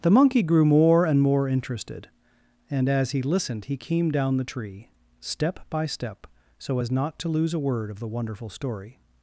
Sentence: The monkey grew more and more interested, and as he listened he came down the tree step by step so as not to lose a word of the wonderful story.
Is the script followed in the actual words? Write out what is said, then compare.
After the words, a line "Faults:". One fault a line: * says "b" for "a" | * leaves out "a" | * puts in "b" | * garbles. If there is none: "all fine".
The monkey grew more and more interested, and as he listened he came down the tree step by step so as not to lose a word of the wonderful story.
Faults:
all fine